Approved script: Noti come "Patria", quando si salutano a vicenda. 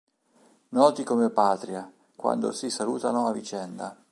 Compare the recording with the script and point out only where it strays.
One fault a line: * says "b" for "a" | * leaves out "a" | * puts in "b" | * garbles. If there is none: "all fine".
all fine